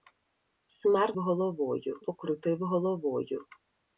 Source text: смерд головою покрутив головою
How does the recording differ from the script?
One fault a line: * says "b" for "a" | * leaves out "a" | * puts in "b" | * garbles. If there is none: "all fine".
all fine